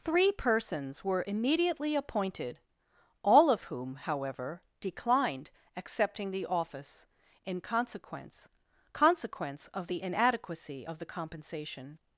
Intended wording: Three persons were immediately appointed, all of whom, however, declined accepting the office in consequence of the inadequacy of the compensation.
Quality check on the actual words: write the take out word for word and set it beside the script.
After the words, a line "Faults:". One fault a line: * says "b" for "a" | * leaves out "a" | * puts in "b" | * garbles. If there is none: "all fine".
Three persons were immediately appointed, all of whom, however, declined accepting the office in consequence consequence of the inadequacy of the compensation.
Faults:
* puts in "consequence"